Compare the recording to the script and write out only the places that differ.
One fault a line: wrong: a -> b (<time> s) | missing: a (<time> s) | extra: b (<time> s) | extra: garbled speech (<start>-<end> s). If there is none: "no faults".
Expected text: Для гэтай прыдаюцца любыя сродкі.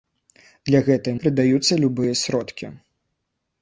no faults